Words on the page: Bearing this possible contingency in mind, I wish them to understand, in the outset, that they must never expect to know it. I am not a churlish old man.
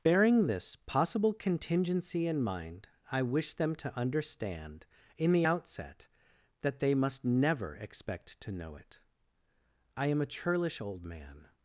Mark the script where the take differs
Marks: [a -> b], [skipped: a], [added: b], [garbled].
Bearing this possible contingency in mind, I wish them to understand, in the outset, that they must never expect to know it. I am [skipped: not] a churlish old man.